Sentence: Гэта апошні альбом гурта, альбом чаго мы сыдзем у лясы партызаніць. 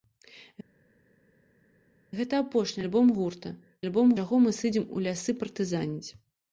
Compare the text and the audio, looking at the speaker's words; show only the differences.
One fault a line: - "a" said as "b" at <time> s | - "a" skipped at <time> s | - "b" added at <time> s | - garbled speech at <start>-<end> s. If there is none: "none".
none